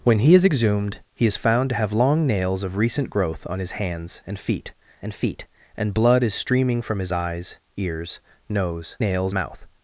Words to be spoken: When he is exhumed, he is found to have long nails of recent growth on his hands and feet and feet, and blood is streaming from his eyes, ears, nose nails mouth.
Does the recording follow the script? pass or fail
pass